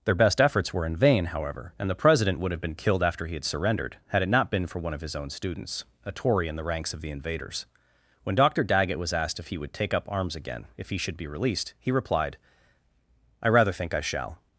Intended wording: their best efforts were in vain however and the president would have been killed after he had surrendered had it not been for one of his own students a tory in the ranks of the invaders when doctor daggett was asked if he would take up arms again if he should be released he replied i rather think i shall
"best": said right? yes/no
yes